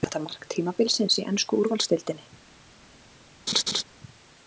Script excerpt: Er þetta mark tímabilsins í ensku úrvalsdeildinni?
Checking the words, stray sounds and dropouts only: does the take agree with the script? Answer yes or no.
no